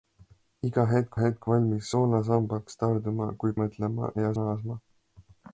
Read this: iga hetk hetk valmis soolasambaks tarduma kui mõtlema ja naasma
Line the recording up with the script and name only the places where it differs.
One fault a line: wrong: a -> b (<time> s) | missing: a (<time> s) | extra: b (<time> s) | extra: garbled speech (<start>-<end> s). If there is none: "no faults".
no faults